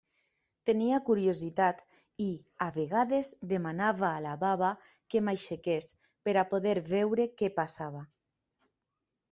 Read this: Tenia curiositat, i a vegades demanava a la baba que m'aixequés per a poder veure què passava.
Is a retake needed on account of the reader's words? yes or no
no